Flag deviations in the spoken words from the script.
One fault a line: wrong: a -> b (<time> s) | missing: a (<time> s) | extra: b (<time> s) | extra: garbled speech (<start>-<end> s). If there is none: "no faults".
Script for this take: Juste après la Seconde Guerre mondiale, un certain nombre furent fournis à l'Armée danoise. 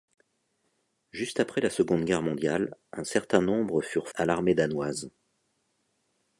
missing: fournis (4.1 s)